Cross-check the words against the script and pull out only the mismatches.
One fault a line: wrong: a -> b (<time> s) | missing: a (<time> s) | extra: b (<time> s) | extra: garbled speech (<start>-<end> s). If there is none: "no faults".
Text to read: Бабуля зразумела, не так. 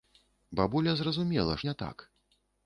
no faults